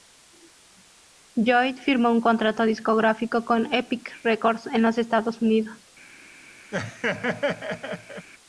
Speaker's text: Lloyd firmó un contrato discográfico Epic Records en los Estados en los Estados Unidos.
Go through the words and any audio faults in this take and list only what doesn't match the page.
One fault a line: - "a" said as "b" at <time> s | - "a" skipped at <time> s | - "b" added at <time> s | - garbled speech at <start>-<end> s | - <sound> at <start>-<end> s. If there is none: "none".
- "con" added at 3.4 s
- "en los Estados" skipped at 5.4 s
- laugh at 6.7-8.3 s